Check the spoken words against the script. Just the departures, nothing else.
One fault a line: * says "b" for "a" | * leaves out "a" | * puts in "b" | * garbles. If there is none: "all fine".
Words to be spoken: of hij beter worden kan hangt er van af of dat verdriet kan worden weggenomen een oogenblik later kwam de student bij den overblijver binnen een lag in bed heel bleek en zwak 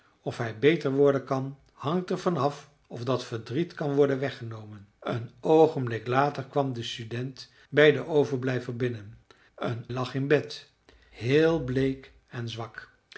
all fine